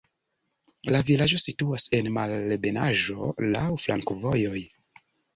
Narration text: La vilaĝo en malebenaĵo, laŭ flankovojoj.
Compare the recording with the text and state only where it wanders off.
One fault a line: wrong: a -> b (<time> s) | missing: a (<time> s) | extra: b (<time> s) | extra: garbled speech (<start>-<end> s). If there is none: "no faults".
extra: situas (1.4 s)